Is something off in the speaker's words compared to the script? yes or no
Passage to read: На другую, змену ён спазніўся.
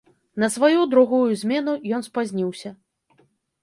yes